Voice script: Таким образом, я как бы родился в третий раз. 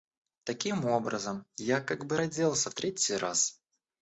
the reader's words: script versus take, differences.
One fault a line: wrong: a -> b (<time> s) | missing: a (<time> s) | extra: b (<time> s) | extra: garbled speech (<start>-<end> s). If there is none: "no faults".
no faults